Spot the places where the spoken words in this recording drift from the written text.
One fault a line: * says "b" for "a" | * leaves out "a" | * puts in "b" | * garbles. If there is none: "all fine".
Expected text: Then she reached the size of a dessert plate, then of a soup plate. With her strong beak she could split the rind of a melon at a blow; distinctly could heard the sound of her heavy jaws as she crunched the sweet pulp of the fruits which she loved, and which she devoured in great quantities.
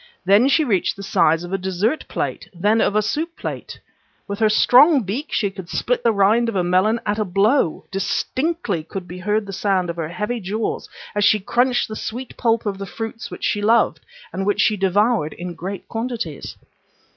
* puts in "be"